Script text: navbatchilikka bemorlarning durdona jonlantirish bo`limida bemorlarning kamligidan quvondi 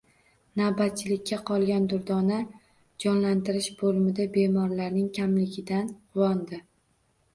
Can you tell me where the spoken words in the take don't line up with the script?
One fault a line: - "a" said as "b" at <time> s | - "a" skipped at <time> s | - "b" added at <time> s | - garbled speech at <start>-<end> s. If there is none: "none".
- "bemorlarning" said as "qolgan" at 1.5 s